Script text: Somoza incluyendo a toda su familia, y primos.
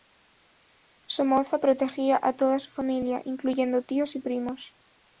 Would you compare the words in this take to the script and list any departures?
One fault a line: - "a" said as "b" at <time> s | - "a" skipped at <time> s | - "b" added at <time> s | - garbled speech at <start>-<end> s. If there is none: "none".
- "incluyendo" said as "protegía" at 1.6 s
- "incluyendo tíos" added at 3.2 s